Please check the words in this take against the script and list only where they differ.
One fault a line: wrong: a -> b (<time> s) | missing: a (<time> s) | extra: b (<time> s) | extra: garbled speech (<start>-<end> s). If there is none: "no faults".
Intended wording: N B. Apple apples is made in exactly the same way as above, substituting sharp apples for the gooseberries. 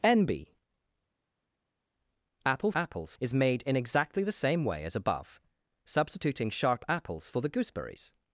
no faults